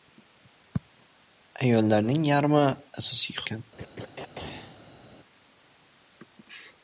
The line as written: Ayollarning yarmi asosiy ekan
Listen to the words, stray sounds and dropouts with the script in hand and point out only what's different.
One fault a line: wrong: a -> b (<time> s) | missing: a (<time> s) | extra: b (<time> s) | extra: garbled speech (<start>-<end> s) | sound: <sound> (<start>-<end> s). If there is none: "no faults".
sound: throat clearing (3.8-5.0 s)